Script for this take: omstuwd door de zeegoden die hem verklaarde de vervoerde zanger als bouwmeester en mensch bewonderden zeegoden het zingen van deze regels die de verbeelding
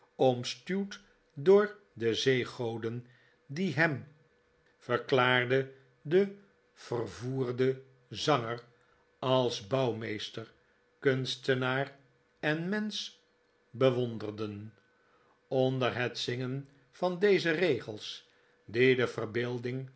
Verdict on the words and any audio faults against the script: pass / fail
fail